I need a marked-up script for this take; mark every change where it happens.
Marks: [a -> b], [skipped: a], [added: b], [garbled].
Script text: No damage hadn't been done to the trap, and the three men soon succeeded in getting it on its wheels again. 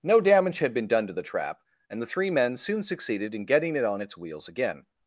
No damage [hadn't -> had] been done to the trap, and the three men soon succeeded in getting it on its wheels again.